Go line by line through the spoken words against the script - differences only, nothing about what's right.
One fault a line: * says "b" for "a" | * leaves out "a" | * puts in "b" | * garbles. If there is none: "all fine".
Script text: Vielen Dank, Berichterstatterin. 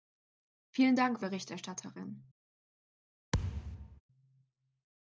all fine